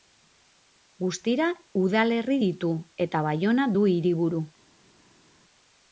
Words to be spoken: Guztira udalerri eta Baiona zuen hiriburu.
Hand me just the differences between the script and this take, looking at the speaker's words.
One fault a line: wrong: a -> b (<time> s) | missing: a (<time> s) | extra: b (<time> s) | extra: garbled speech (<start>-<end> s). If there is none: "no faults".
extra: ditu (2.5 s)
wrong: zuen -> du (3.8 s)